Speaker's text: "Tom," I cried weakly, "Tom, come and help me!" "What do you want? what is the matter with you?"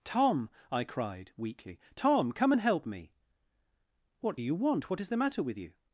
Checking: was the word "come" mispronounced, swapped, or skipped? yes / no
no